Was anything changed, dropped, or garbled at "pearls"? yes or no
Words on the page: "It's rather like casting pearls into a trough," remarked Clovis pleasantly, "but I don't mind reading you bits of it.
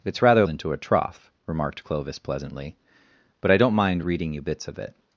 yes